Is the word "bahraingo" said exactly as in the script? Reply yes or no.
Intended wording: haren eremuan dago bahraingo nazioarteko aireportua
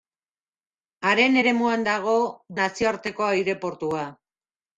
no